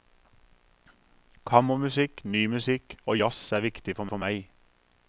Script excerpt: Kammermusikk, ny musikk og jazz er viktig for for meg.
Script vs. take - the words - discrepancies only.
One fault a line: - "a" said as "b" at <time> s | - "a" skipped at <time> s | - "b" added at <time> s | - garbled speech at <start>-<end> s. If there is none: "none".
none